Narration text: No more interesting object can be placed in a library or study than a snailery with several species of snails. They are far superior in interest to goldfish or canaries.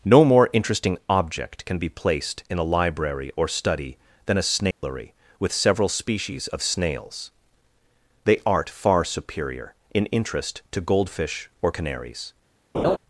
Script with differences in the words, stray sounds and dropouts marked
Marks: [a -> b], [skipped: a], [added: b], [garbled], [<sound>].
No more interesting object can be placed in a library or study than a snailery [dropout] with several species of snails. They [are -> art] far superior in interest to goldfish or canaries. [laugh]